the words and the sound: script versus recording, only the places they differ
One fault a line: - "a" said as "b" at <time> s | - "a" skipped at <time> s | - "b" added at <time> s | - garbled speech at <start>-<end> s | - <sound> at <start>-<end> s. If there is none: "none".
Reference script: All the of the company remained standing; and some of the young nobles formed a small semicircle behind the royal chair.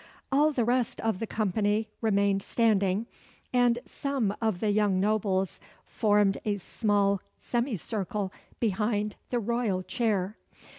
- "rest" added at 0.6 s